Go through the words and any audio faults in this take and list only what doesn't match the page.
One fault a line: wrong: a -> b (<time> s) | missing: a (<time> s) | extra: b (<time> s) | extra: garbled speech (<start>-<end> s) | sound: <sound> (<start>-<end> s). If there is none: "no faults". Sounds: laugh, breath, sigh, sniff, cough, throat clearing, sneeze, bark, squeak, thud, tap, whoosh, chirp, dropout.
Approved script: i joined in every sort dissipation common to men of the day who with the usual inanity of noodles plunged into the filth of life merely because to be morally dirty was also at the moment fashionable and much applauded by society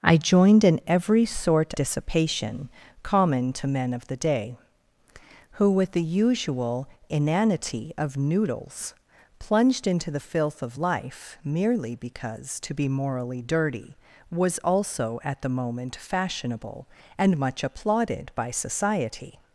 no faults